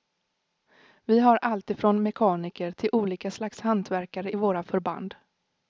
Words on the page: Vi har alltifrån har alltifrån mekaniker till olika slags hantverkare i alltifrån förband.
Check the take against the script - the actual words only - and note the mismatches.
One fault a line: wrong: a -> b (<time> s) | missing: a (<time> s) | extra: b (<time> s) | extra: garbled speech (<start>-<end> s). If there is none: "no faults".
missing: har alltifrån (2.0 s)
wrong: alltifrån -> våra (4.3 s)